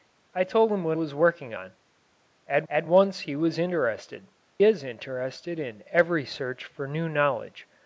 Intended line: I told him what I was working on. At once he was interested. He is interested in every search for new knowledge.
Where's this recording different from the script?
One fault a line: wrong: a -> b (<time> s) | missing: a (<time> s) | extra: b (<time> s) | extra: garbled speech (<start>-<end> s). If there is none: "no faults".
missing: I (1.0 s)
extra: at (2.7 s)
missing: He (4.3 s)